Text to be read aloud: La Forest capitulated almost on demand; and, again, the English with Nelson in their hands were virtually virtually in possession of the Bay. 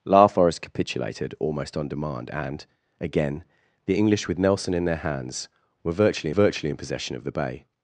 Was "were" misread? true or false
false